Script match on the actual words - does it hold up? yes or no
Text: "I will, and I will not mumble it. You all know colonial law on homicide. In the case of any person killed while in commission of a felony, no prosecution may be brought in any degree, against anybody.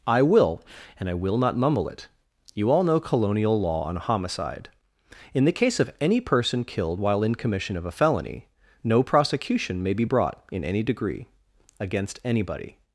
yes